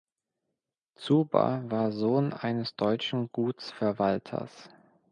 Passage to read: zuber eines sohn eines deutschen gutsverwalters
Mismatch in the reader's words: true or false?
true